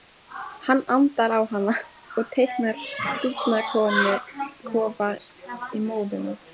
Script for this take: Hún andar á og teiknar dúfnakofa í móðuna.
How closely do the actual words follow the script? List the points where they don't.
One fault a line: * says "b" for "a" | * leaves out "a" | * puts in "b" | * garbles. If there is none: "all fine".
* says "Hann" for "Hún"
* puts in "hana"